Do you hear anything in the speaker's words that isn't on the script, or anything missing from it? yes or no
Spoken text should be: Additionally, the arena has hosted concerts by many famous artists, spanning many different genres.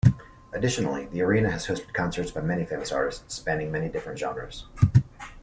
no